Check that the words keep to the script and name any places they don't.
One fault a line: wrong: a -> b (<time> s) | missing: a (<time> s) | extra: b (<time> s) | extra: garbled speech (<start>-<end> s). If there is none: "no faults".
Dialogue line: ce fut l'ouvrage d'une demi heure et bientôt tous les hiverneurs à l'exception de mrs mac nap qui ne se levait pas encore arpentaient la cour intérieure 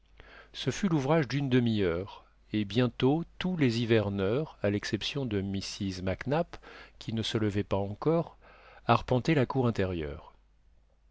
no faults